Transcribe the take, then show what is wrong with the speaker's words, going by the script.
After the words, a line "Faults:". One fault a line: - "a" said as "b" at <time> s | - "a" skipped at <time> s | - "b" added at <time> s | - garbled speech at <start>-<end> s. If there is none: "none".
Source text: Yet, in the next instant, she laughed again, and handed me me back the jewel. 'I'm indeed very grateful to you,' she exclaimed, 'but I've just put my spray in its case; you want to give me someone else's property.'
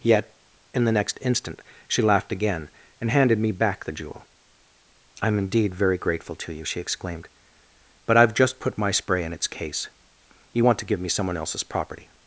Yet, in the next instant, she laughed again, and handed me back the jewel. 'I'm indeed very grateful to you,' she exclaimed, 'but I've just put my spray in its case; you want to give me someone else's property.'
Faults:
- "me" skipped at 3.5 s